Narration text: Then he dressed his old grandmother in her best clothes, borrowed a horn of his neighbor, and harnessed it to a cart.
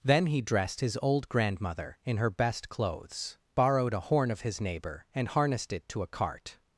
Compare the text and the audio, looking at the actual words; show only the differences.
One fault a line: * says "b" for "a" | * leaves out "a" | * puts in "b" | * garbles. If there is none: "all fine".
all fine